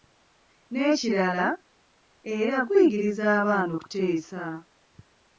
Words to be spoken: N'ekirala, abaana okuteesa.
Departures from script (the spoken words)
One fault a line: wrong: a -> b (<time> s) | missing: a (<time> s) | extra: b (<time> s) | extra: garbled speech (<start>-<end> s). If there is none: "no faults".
extra: era guyigiriza (2.4 s)